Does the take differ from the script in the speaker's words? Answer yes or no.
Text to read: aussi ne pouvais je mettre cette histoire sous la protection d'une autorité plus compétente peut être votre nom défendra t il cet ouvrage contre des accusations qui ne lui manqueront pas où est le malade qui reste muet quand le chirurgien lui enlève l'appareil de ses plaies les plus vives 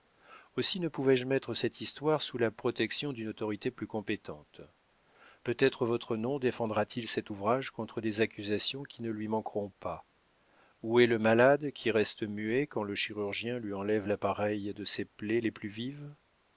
no